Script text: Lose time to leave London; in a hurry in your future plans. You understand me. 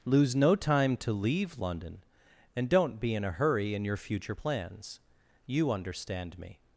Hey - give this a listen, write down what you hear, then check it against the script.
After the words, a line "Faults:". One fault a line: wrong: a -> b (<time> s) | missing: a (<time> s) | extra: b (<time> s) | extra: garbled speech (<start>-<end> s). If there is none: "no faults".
Lose no time to leave London; and don't be in a hurry in your future plans. You understand me.
Faults:
extra: no (0.3 s)
extra: and don't be (2.5 s)